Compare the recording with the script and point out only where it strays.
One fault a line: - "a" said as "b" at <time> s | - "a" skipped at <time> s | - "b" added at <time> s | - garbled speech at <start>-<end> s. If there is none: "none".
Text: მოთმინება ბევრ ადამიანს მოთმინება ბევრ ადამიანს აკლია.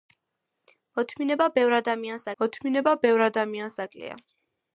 none